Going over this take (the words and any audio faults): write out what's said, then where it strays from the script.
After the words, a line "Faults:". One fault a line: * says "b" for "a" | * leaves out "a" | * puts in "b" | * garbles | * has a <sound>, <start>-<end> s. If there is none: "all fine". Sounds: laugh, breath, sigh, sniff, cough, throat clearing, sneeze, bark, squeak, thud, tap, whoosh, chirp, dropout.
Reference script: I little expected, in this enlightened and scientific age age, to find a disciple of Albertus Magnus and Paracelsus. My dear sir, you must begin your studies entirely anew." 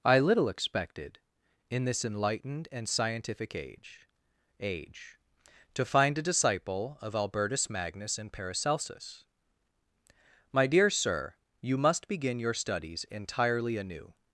I little expected, in this enlightened and scientific age age, to find a disciple of Albertus Magnus and Paracelsus. My dear sir, you must begin your studies entirely anew."
Faults:
all fine